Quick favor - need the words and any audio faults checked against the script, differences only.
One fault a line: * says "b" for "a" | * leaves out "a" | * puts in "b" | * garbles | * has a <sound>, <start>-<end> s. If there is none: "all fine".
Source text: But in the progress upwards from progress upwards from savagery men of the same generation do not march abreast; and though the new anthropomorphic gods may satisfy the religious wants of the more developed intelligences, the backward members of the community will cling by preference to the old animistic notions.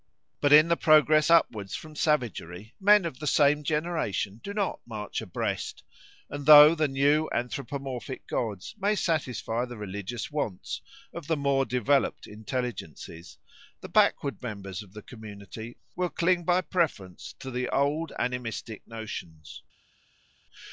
* leaves out "progress upwards from"